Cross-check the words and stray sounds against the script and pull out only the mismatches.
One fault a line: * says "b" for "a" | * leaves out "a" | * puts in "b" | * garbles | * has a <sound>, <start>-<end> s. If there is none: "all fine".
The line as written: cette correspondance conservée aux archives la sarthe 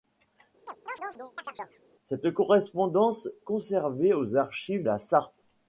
* has a chirp, 0.7-1.8 s